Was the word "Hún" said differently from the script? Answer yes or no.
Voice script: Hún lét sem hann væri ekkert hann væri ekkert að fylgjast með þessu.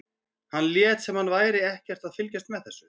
yes